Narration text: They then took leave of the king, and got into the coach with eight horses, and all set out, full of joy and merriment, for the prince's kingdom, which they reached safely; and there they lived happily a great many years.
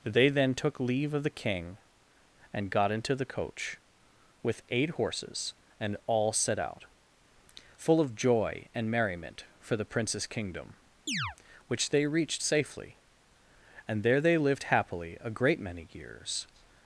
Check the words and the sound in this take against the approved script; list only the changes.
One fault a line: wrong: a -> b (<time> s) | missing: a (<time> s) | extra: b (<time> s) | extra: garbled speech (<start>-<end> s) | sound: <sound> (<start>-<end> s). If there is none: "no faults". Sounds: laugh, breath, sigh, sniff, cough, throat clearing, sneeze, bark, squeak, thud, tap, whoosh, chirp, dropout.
sound: chirp (11.1-11.4 s)